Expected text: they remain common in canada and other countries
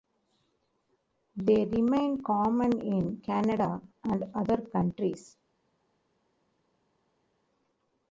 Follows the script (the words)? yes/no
yes